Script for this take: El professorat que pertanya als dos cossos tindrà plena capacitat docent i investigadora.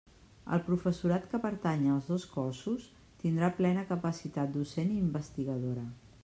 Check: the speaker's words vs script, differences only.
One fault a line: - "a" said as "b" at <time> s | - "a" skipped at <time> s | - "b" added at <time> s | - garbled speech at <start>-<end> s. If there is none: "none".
none